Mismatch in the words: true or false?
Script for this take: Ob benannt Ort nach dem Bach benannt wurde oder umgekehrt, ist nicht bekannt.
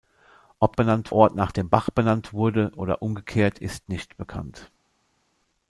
false